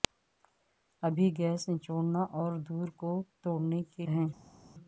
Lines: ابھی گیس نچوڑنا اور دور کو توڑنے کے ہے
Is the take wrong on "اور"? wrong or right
right